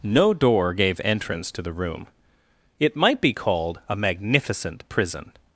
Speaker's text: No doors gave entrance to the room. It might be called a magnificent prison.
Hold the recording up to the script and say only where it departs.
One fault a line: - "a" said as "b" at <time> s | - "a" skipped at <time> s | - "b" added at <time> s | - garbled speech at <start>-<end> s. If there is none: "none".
- "doors" said as "door" at 0.3 s